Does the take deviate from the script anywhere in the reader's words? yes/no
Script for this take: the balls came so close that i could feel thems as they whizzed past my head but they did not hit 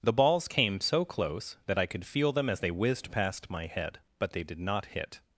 yes